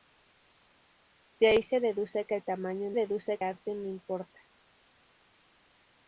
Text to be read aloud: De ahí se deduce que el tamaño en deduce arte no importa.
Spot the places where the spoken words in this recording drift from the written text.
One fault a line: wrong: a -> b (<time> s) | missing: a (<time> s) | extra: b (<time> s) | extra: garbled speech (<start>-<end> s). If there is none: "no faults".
no faults